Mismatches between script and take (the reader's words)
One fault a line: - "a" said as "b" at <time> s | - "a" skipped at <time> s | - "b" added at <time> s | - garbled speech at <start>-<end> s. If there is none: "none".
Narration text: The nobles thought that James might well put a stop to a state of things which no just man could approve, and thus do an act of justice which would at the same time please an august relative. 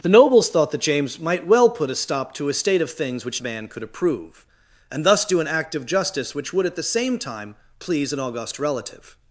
- "no just" skipped at 3.4 s